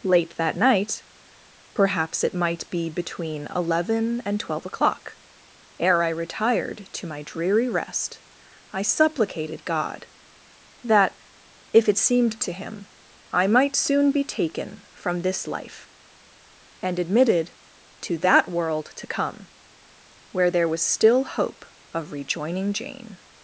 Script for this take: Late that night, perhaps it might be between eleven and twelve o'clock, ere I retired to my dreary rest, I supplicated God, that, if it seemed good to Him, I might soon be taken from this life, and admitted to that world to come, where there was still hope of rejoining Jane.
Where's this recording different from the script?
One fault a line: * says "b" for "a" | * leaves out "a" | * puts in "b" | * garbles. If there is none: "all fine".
* leaves out "good"